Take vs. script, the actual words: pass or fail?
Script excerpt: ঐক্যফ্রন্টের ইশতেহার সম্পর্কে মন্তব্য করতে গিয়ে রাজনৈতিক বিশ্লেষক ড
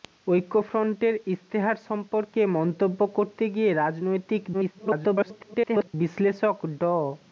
fail